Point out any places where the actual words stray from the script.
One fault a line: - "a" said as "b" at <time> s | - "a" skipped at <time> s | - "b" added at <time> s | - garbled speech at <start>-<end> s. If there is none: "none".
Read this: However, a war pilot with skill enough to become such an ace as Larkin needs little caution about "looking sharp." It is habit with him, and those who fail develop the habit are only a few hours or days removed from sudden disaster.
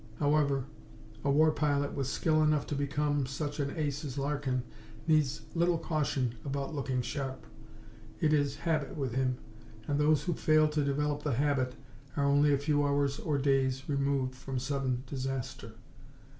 - "to" added at 10.7 s